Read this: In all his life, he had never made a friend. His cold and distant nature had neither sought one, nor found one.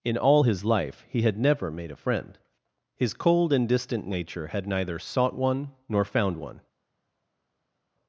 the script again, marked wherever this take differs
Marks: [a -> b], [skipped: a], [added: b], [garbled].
In all his life, he had never made a friend. His cold and distant nature had neither sought one, nor found one.